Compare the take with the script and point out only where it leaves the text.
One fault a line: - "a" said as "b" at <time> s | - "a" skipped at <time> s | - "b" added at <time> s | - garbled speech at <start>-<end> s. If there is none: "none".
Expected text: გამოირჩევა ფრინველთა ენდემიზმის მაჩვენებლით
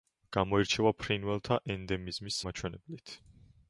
none